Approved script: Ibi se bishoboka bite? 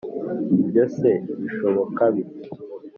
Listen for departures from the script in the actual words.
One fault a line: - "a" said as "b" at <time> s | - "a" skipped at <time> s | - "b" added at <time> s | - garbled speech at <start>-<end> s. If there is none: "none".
- "Ibi" said as "Ibyo" at 0.6 s